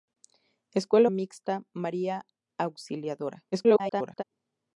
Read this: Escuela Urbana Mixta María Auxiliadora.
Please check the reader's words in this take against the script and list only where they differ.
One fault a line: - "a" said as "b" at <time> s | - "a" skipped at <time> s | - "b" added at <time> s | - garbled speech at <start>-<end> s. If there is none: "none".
- "Urbana" skipped at 1.1 s
- garbled speech at 3.5-4.2 s